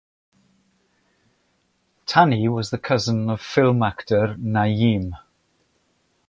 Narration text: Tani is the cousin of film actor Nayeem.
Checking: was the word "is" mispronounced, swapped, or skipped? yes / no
yes